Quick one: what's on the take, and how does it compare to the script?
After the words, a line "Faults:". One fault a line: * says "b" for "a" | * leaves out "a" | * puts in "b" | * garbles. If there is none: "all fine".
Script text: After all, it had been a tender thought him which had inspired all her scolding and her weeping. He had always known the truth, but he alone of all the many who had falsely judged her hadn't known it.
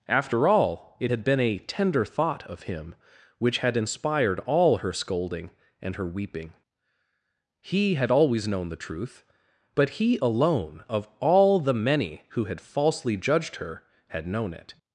After all, it had been a tender thought of him which had inspired all her scolding and her weeping. He had always known the truth, but he alone of all the many who had falsely judged her had known it.
Faults:
* puts in "of"
* says "had" for "hadn't"